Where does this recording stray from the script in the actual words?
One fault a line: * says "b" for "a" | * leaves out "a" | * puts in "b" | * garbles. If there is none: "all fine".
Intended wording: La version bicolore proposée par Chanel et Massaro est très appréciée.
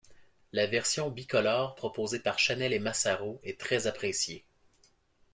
all fine